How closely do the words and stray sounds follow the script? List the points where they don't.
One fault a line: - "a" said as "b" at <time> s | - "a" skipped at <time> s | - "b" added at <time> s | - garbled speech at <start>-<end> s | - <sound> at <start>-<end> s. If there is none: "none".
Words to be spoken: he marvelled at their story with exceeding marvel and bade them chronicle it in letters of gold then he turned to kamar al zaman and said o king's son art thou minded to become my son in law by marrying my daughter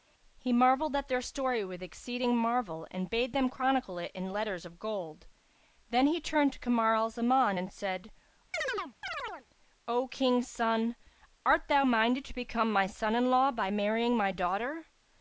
- chirp at 8.5-9.5 s